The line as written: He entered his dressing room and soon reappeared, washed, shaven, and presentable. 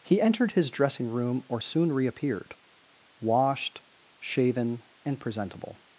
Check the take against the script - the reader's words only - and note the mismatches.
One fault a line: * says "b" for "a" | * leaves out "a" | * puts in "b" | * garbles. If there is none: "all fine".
* says "or" for "and"